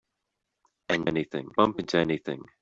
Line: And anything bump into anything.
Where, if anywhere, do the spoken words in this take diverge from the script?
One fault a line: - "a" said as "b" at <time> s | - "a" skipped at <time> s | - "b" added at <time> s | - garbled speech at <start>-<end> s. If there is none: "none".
none